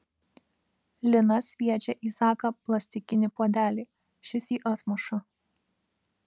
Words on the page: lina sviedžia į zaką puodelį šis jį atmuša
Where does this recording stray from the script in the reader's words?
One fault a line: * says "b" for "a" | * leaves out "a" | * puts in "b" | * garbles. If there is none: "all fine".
* puts in "plastikinį"